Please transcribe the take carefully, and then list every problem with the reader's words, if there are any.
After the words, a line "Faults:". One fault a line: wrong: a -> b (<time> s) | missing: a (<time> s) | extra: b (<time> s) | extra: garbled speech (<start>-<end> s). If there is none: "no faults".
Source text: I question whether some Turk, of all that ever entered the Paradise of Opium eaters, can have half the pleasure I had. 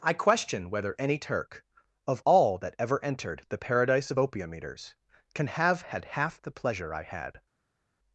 I question whether any Turk, of all that ever entered the Paradise of Opium eaters, can have had half the pleasure I had.
Faults:
wrong: some -> any (1.0 s)
extra: had (5.8 s)